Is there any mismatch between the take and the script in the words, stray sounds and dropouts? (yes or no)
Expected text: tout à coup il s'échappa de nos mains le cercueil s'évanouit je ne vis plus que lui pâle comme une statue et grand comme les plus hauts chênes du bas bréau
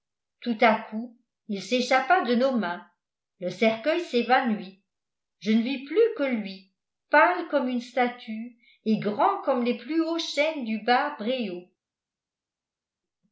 no